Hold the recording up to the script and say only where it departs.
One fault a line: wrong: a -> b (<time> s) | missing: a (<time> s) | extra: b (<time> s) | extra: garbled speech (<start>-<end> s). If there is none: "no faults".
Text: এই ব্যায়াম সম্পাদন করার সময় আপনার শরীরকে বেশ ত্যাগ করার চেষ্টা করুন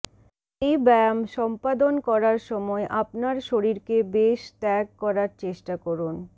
no faults